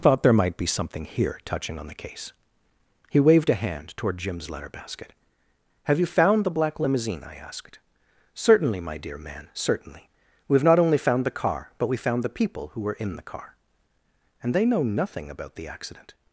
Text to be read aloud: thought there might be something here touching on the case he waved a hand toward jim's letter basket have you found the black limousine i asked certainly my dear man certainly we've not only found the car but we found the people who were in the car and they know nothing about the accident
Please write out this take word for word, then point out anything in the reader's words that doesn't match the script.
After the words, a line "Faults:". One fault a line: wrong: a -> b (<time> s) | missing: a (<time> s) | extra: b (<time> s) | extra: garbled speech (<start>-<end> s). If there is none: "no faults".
thought there might be something here touching on the case he waved a hand toward jim's letter basket have you found the black limousine i asked certainly my dear man certainly we've not only found the car but we found the people who were in the car and they know nothing about the accident
Faults:
no faults